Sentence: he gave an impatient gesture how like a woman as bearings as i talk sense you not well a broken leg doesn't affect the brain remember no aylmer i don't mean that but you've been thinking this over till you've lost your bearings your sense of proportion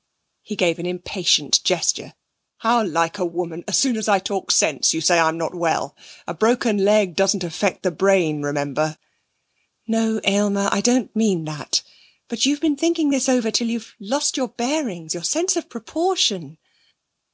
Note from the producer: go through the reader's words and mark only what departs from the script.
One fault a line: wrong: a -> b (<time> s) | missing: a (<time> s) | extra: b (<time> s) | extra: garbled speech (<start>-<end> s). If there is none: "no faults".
wrong: bearings -> soon (3.8 s)
extra: say i'm (5.0 s)